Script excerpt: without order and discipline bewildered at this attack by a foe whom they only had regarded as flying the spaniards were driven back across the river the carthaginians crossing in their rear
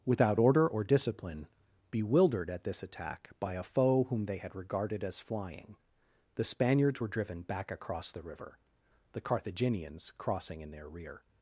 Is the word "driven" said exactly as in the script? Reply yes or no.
yes